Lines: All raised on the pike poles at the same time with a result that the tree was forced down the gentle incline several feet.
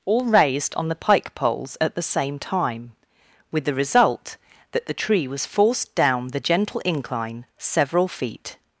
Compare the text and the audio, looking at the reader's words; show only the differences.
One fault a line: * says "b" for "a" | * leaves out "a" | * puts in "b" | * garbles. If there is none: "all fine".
* says "the" for "a"